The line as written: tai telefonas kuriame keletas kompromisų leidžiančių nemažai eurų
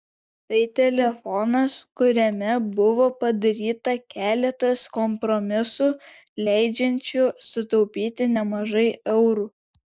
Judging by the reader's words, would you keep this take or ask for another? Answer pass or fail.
fail